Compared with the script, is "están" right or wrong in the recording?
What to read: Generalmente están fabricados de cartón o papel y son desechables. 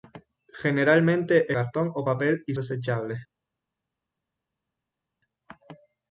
wrong